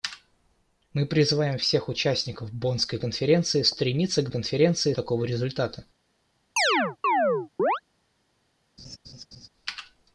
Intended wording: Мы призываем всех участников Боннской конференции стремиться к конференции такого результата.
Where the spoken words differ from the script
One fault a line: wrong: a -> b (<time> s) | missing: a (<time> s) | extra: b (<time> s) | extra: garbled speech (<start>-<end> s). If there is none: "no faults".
no faults